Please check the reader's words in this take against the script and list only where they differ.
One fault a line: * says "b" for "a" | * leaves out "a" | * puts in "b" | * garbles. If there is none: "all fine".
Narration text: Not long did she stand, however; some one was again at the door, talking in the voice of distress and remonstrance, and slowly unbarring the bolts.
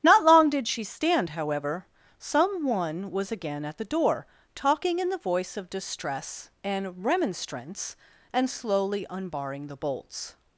all fine